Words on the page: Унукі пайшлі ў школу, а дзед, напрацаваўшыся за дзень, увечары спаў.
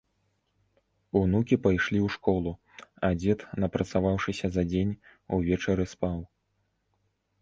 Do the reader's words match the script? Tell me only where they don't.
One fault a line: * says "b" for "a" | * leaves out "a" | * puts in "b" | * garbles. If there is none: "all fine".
all fine